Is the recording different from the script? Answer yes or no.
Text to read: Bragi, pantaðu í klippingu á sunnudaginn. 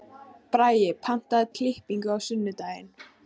no